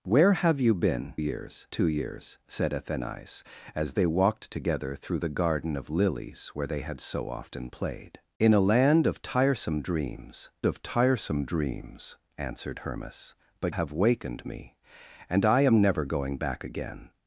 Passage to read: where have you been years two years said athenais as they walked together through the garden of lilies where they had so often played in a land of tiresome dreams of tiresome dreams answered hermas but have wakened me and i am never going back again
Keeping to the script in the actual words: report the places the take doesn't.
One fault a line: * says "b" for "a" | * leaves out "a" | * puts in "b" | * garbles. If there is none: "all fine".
all fine